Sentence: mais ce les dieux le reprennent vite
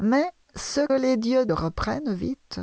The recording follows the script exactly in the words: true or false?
true